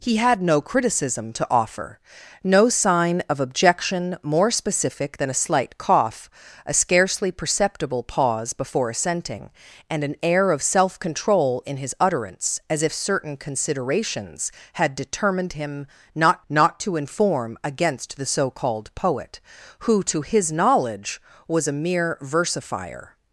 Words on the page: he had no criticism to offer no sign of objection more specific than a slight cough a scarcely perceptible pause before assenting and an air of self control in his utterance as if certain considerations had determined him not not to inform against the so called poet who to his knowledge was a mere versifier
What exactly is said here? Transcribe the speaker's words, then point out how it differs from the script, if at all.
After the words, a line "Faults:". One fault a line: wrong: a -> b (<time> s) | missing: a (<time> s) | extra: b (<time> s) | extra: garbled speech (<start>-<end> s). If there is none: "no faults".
he had no criticism to offer no sign of objection more specific than a slight cough a scarcely perceptible pause before assenting and an air of self control in his utterance as if certain considerations had determined him not not to inform against the so called poet who to his knowledge was a mere versifier
Faults:
no faults